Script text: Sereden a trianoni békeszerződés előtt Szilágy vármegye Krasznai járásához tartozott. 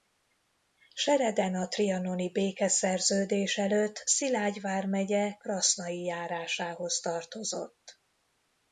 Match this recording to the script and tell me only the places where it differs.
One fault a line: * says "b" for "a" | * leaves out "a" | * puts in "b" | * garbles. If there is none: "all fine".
all fine